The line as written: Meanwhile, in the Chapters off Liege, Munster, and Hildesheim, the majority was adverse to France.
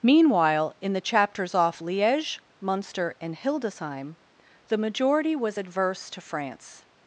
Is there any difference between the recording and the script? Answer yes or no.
no